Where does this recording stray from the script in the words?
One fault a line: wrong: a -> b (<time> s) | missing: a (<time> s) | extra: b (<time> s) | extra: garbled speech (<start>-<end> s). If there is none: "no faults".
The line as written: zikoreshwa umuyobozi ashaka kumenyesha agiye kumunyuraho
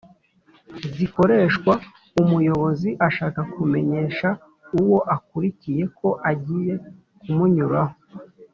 extra: uwo akurikiye ko (4.8 s)